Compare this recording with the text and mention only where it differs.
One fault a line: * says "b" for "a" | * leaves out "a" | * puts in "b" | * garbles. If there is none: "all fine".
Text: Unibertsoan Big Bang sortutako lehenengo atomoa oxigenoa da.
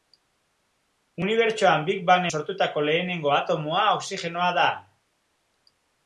all fine